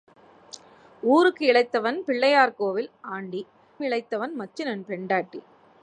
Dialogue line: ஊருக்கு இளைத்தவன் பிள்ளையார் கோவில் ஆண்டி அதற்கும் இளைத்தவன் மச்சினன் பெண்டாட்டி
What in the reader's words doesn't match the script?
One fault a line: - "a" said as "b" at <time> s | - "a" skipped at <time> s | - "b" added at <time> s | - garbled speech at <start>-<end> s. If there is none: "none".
- "அதற்கும்" skipped at 3.4 s